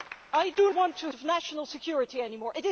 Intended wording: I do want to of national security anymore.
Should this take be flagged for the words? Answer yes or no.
no